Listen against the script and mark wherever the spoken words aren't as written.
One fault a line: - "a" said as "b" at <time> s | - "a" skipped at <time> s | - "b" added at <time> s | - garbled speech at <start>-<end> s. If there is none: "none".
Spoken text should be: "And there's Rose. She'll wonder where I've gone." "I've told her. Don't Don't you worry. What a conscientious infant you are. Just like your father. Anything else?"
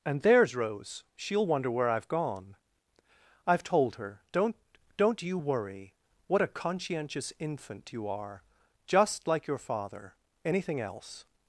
none